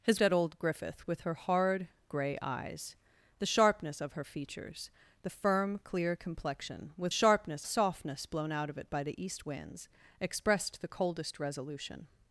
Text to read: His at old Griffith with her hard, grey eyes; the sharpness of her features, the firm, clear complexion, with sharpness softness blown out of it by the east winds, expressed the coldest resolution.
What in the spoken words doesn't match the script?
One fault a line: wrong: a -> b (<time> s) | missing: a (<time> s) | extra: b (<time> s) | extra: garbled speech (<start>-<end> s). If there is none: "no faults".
no faults